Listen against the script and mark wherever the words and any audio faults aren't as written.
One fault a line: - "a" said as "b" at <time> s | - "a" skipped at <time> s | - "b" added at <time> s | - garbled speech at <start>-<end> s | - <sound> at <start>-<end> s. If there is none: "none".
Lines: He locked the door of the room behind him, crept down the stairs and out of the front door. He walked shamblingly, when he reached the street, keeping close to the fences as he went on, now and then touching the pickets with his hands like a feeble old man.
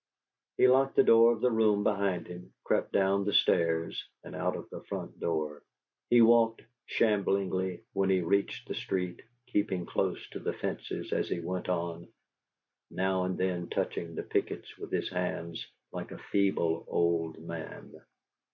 none